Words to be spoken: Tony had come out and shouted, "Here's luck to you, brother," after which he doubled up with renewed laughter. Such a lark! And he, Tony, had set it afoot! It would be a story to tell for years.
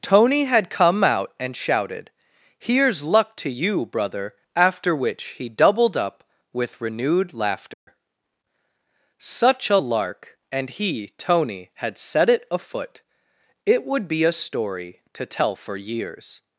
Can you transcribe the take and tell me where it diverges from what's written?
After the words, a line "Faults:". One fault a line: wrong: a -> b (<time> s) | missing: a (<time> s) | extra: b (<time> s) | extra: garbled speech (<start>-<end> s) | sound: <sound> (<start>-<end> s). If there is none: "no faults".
Tony had come out and shouted, "Here's luck to you, brother," after which he doubled up with renewed laughter. Such a lark! And he, Tony, had set it afoot! It would be a story to tell for years.
Faults:
sound: dropout (7.7-7.9 s)